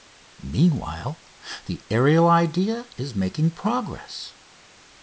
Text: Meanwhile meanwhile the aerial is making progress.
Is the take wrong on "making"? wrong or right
right